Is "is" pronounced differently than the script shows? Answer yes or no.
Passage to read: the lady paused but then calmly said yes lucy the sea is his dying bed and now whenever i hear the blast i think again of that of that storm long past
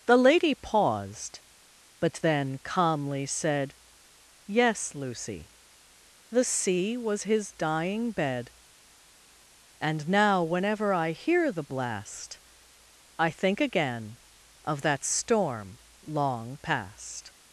yes